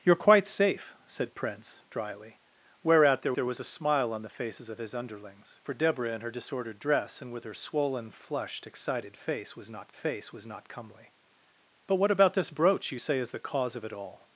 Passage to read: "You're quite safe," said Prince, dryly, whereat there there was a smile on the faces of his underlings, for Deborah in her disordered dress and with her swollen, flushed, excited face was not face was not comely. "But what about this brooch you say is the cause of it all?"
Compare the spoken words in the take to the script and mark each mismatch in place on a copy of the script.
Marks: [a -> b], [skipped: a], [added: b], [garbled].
"You're quite safe," said Prince, dryly, whereat there there was a smile on the faces of his underlings, for Deborah in her disordered dress and with her swollen, flushed, excited face was not face was not comely. "But what about this brooch you say is the cause of it all?"